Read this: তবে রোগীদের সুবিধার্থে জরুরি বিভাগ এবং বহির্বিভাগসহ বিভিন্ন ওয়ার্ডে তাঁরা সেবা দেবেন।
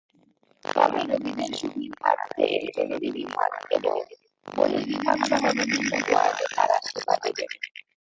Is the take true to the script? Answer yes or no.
yes